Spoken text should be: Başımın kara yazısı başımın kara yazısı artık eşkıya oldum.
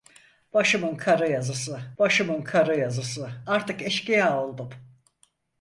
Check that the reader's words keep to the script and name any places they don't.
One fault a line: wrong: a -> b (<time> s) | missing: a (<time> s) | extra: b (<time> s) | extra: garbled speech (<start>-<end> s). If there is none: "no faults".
no faults